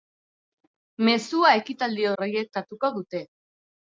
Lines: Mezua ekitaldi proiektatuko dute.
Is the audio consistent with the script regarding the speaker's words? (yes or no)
yes